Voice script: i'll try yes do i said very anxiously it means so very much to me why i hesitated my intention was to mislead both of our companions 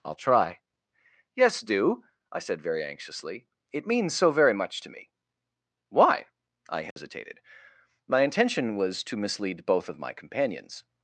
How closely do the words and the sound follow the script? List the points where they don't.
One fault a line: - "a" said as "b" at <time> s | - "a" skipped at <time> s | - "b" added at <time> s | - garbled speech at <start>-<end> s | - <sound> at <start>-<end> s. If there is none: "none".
- dropout at 6.9-7.0 s
- "our" said as "my" at 10.0 s